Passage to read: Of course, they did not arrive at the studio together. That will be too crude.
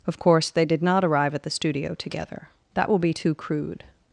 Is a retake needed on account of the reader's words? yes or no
no